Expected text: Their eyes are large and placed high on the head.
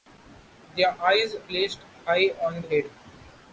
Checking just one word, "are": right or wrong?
wrong